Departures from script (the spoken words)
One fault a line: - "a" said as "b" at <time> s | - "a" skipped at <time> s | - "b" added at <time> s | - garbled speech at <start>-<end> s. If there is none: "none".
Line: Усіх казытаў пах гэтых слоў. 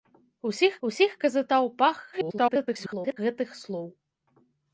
- "усіх" added at 0.9 s
- garbled speech at 2.1-3.2 s